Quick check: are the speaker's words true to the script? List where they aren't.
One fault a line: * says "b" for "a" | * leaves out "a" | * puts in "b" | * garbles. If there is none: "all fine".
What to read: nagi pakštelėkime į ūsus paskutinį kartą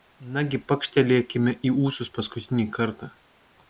all fine